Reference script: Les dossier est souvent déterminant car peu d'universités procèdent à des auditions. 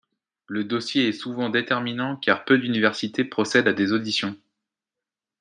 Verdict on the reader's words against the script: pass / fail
fail